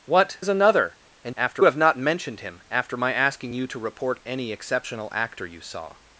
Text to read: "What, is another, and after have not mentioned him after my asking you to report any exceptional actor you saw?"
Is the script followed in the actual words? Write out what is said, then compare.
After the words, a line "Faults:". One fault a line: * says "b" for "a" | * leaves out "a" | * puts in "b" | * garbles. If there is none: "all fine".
"What, is another, and after have not mentioned him after my asking you to report any exceptional actor you saw?"
Faults:
all fine